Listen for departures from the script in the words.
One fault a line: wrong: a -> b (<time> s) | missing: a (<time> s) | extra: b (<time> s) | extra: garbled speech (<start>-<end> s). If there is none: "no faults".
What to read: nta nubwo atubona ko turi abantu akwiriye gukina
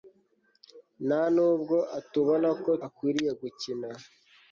missing: turi abantu (2.7 s)